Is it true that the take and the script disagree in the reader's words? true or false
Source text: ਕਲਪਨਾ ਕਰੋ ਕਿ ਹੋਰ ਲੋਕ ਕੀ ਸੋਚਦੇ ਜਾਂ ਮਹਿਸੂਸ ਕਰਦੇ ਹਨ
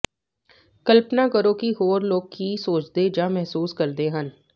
false